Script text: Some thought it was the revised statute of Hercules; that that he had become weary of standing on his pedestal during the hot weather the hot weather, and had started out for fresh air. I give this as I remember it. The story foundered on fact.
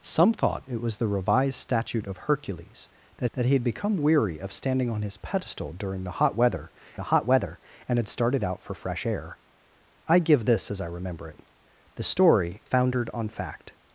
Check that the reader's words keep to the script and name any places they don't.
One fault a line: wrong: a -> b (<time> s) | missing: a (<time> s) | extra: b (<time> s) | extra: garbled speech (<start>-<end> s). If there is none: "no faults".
no faults